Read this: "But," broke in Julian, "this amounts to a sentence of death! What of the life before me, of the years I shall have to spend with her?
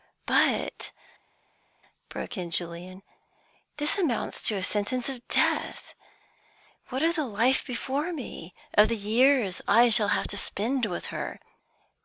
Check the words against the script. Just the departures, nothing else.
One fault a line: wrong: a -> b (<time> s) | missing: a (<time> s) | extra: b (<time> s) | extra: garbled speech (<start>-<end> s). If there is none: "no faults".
no faults